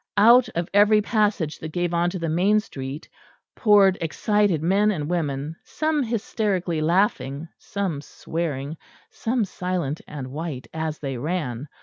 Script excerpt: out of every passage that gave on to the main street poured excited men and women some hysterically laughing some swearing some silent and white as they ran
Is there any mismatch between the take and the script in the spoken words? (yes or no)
no